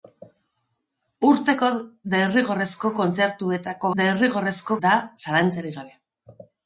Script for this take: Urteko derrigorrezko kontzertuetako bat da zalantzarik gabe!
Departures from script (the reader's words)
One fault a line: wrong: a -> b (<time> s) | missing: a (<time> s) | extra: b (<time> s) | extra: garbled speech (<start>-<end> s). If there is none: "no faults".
wrong: bat -> derrigorrezko (4.0 s)